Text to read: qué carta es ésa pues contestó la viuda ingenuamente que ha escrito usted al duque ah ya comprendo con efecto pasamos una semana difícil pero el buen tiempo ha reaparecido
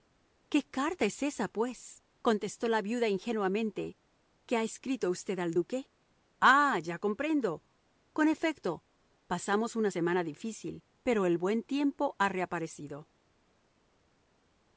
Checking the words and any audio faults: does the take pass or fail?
pass